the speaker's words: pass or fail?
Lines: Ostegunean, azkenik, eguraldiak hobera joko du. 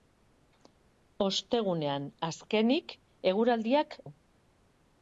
fail